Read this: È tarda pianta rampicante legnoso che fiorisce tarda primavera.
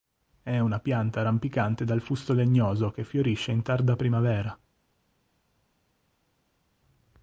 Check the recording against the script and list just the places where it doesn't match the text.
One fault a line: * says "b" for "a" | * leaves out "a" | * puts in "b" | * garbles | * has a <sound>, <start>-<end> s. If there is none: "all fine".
* says "una" for "tarda"
* puts in "dal fusto"
* puts in "in"